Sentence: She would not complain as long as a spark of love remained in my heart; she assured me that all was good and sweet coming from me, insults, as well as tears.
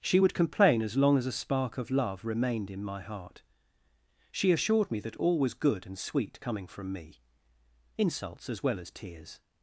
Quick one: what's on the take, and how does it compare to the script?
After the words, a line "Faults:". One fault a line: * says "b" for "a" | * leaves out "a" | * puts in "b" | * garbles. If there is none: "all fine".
She would complain as long as a spark of love remained in my heart; she assured me that all was good and sweet coming from me, insults, as well as tears.
Faults:
* leaves out "not"